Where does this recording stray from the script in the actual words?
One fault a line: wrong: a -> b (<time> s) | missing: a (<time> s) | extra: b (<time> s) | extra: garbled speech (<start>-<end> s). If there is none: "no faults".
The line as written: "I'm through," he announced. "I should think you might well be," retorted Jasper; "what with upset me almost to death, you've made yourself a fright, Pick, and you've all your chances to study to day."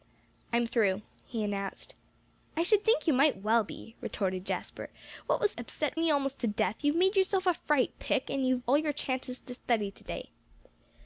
no faults